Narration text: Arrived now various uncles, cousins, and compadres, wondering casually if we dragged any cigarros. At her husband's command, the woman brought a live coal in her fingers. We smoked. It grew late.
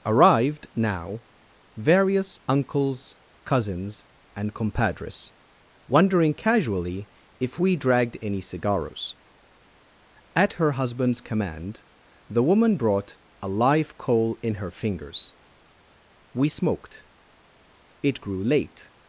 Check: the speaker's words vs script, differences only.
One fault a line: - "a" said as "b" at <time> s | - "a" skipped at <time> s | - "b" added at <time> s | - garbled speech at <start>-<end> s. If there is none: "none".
none